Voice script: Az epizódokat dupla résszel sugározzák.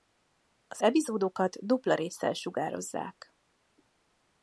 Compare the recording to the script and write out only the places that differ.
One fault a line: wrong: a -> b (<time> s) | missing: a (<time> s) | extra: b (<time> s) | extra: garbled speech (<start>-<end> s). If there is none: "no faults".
no faults